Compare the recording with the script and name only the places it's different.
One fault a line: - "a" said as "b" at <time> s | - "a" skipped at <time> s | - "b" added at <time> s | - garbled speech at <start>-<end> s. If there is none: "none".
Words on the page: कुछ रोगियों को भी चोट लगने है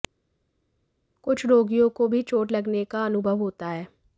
- "का अनुभव होता" added at 2.8 s